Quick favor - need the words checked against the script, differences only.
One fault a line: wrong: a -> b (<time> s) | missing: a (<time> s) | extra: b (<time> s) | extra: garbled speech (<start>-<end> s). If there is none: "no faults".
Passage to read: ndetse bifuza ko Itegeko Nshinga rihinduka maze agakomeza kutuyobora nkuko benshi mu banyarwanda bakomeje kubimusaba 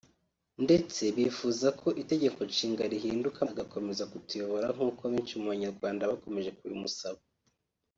missing: maze (3.4 s)